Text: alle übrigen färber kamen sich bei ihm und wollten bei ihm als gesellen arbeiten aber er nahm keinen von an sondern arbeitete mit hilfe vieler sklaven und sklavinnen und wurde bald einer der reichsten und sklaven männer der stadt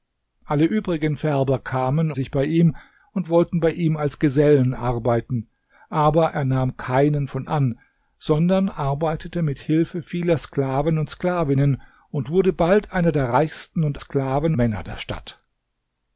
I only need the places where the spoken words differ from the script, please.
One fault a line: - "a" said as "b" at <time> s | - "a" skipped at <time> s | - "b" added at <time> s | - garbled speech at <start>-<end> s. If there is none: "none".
none